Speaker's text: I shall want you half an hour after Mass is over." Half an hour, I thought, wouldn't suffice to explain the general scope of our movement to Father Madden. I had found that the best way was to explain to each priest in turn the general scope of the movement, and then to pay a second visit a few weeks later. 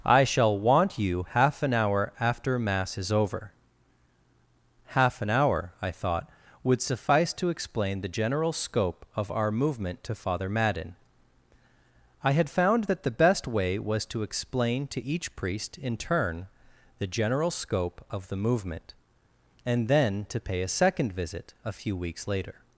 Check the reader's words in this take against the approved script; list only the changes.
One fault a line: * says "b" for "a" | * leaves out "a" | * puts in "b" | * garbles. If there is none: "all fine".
* says "would" for "wouldn't"